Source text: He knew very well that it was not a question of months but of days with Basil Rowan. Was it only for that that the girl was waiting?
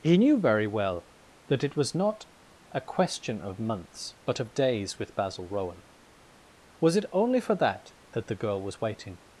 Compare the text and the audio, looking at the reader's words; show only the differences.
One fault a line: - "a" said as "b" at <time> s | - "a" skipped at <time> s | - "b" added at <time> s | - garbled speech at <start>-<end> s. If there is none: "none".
none